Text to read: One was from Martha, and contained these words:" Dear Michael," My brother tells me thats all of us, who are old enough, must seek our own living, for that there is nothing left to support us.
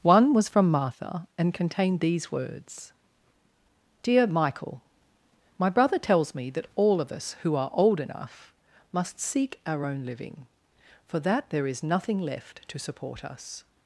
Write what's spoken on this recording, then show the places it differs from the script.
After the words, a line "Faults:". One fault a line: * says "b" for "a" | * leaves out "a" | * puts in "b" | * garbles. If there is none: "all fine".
One was from Martha, and contained these words:" Dear Michael," My brother tells me that all of us, who are old enough, must seek our own living, for that there is nothing left to support us.
Faults:
* says "that" for "thats"